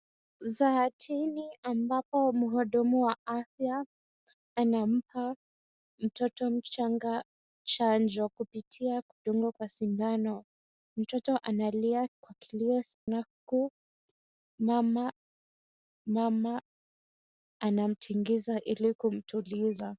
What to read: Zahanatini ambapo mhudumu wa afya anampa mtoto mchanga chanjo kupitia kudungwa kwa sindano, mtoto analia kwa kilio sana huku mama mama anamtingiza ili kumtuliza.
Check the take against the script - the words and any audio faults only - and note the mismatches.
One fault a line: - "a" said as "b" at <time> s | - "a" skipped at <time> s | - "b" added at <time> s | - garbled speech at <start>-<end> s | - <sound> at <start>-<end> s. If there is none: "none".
- dropout at 12.9-13.1 s